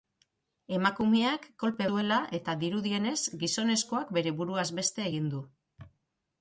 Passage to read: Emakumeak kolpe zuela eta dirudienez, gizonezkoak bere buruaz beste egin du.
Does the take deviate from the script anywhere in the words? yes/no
no